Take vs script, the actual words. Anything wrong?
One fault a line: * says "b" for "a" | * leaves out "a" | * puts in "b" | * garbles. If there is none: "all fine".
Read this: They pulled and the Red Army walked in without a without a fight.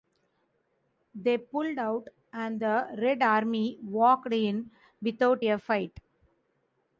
* puts in "out"
* leaves out "without a"